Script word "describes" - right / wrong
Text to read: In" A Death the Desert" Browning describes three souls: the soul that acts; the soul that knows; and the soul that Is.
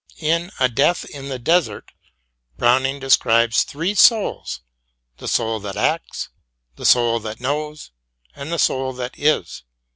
right